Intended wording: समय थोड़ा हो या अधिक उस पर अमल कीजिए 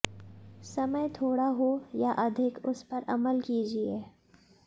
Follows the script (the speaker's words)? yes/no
yes